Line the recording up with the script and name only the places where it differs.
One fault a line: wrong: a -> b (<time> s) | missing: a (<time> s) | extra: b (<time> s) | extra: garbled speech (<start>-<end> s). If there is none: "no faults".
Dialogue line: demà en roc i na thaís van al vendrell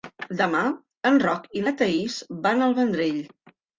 no faults